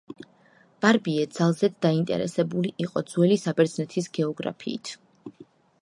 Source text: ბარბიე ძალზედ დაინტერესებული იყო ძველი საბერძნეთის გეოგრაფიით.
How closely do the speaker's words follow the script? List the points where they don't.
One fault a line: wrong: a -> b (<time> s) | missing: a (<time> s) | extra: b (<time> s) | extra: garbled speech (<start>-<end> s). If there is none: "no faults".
no faults